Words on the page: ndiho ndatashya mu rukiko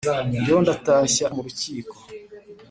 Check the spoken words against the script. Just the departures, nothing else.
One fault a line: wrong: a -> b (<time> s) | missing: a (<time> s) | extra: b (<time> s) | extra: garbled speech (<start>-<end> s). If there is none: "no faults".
no faults